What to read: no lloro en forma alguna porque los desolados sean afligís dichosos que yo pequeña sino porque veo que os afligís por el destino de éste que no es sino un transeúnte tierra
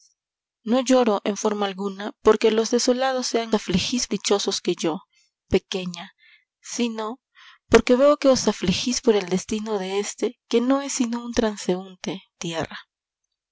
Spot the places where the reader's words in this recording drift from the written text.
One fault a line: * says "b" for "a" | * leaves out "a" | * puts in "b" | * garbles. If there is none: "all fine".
all fine